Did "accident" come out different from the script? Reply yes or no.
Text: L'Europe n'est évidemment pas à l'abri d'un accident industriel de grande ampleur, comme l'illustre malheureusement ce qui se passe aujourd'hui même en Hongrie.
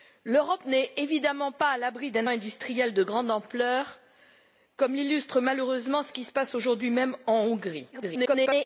yes